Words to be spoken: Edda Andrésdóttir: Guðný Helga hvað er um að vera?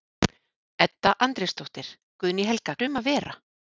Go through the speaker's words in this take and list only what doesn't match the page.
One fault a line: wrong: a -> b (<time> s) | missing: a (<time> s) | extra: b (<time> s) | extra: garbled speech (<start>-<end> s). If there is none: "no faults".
missing: hvað (2.8 s)